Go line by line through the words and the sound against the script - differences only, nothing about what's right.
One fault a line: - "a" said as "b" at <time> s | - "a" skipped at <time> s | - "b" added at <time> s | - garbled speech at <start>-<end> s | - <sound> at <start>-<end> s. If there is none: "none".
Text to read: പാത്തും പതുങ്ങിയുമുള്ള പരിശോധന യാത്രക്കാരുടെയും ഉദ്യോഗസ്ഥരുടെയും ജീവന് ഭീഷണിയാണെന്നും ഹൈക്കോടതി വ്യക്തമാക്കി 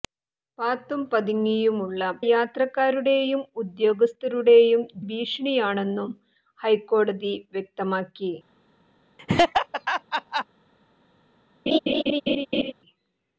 - "പരിശോധന" skipped at 2.0 s
- "ജീവന്" skipped at 4.8 s
- laugh at 9.2-10.4 s
- laugh at 11.7-12.7 s